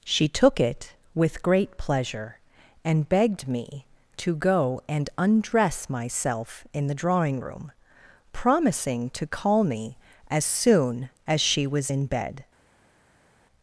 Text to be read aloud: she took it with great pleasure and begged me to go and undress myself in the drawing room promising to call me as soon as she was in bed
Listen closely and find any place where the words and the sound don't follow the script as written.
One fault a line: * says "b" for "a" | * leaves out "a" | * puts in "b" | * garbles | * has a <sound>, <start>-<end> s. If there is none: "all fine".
all fine